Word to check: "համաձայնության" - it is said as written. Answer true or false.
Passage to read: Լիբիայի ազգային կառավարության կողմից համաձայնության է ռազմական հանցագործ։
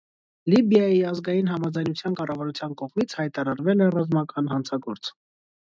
false